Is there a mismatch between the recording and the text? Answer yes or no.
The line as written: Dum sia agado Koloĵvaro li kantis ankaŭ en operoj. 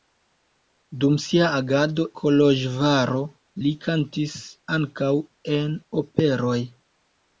no